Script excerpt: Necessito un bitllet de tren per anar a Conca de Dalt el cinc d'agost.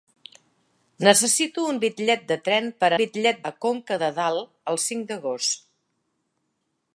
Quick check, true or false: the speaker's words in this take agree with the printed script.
false